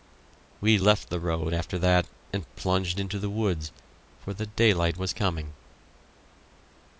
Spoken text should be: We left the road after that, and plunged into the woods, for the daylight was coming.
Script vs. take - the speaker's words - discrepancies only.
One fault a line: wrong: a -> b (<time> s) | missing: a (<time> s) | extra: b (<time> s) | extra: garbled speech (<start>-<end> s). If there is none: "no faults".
no faults